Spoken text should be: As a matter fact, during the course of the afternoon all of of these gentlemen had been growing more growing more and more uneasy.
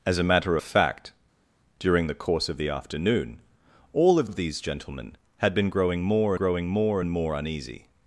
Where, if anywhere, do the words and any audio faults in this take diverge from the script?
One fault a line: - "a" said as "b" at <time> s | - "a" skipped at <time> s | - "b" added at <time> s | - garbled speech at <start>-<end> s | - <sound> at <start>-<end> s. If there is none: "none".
none